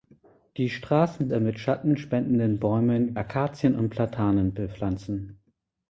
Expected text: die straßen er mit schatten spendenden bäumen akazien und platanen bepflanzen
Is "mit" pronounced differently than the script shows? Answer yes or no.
no